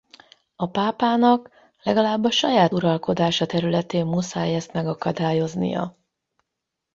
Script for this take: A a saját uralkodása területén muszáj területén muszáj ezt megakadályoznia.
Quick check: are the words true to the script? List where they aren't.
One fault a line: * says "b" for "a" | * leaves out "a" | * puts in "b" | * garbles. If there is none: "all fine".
* puts in "pápának legalább"
* leaves out "területén muszáj"